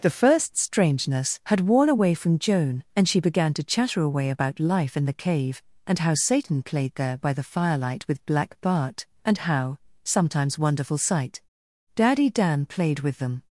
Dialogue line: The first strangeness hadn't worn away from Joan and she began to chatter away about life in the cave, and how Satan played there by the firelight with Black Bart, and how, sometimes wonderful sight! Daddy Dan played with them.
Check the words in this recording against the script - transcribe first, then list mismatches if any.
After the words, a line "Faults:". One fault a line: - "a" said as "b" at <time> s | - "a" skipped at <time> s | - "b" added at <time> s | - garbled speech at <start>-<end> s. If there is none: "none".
The first strangeness had worn away from Joan and she began to chatter away about life in the cave, and how Satan played there by the firelight with Black Bart, and how, sometimes wonderful sight! Daddy Dan played with them.
Faults:
- "hadn't" said as "had" at 1.4 s